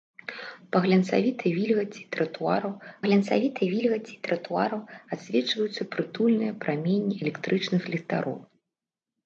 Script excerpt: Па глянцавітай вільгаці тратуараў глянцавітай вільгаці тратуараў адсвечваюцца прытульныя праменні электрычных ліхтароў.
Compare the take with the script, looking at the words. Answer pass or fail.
pass